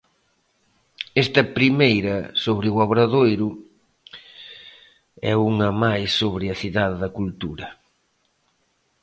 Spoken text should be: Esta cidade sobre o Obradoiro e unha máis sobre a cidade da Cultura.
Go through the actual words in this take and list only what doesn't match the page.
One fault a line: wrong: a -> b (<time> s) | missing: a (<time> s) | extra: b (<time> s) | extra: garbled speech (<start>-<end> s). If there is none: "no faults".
wrong: cidade -> primeira (1.6 s)